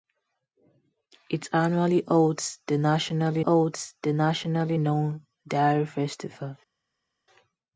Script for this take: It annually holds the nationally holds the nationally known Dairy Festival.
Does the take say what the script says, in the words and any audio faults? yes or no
yes